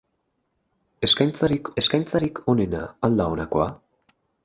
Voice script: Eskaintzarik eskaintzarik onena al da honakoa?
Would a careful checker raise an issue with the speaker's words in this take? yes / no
no